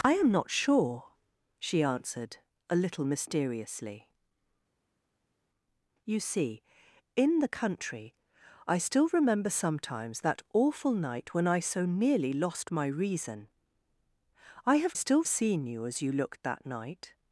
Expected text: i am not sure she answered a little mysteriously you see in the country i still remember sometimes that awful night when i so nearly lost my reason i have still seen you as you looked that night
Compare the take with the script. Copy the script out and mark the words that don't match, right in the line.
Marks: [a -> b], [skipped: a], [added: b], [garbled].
i am not sure she answered a little mysteriously you see in the country i still remember sometimes that awful night when i so nearly lost my reason i have still seen you as you looked that night